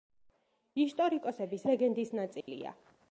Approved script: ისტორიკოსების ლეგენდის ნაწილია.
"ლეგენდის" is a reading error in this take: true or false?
false